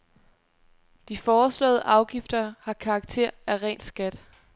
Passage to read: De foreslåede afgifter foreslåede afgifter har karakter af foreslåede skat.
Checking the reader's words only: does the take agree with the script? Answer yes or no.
no